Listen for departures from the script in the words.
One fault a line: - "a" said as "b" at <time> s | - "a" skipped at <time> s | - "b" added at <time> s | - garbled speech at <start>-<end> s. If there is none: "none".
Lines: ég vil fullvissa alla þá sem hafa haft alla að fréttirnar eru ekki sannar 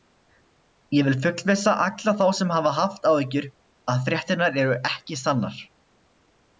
- "alla" said as "áhyggjur" at 3.1 s